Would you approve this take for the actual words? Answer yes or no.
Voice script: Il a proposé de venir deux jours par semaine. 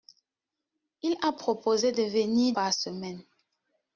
no